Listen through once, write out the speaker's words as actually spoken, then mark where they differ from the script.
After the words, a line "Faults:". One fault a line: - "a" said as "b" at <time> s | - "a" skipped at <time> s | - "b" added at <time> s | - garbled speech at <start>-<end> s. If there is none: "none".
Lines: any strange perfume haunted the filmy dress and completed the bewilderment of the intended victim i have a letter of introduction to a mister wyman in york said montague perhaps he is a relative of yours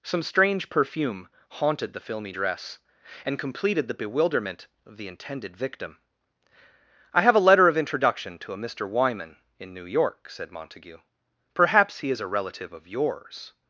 some strange perfume haunted the filmy dress and completed the bewilderment of the intended victim i have a letter of introduction to a mister wyman in new york said montague perhaps he is a relative of yours
Faults:
- "any" said as "some" at 0.0 s
- "new" added at 9.7 s